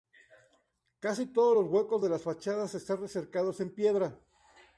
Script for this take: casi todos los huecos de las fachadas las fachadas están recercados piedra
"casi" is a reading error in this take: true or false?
false